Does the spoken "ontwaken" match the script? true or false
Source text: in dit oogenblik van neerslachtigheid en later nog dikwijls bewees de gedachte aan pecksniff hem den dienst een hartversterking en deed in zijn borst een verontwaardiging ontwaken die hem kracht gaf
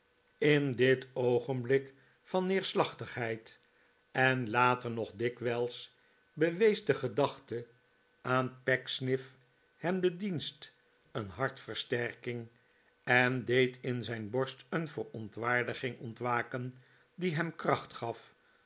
true